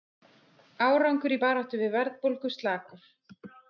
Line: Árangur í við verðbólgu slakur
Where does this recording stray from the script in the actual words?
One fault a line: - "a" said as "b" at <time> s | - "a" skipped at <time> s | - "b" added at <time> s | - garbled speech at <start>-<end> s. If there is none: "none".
- "baráttu" added at 1.4 s